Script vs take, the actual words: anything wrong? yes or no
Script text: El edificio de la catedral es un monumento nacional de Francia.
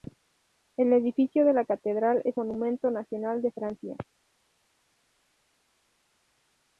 yes